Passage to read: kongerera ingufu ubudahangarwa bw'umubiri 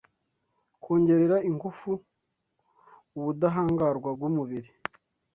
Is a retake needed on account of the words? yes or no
no